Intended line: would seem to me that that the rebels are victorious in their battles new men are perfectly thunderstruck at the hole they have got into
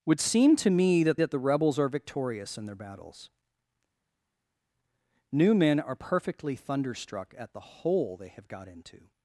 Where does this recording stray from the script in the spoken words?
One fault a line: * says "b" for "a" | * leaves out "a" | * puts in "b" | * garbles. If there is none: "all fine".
all fine